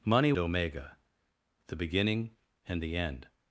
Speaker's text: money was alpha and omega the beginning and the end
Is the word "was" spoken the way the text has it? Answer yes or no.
no